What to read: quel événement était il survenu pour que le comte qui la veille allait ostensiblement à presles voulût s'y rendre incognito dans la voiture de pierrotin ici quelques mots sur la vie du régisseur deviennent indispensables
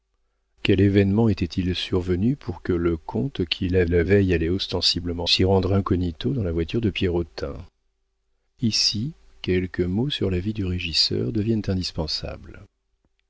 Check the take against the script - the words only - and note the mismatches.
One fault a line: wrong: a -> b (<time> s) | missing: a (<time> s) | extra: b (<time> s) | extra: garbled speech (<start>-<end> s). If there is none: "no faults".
extra: la (3.9 s)
missing: à presles voulût (5.3 s)